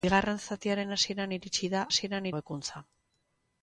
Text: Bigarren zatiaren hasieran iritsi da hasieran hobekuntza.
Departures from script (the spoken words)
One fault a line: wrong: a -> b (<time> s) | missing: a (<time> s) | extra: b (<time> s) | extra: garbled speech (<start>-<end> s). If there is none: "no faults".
no faults